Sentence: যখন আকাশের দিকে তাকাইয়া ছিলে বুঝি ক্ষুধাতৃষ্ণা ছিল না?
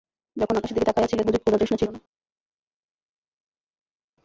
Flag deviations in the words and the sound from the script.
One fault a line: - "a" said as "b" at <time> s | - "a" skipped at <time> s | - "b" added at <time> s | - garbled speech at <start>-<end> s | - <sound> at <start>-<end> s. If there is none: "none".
none